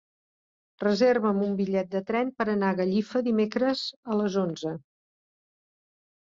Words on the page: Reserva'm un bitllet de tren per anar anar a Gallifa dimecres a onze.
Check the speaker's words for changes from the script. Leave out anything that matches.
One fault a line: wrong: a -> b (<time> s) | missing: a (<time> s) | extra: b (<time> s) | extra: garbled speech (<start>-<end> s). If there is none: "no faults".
missing: anar (2.7 s)
extra: les (4.2 s)